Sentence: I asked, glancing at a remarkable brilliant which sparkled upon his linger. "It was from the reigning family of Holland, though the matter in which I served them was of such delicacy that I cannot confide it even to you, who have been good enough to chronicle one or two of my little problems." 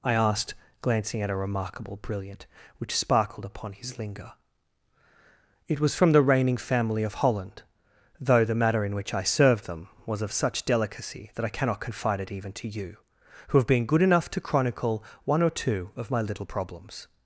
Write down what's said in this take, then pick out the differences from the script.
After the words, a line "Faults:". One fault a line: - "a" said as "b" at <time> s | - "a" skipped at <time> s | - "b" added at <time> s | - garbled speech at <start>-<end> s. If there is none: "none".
I asked, glancing at a remarkable brilliant which sparkled upon his linger. "It was from the reigning family of Holland, though the matter in which I served them was of such delicacy that I cannot confide it even to you, who have been good enough to chronicle one or two of my little problems."
Faults:
none